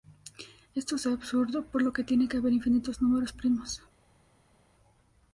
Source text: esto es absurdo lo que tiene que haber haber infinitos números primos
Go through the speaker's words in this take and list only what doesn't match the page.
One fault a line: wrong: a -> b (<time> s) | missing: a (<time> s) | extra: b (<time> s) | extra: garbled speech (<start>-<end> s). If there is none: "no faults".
extra: por (1.6 s)
missing: haber (2.5 s)